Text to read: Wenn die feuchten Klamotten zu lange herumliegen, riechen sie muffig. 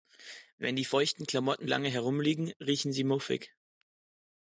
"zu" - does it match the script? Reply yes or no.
no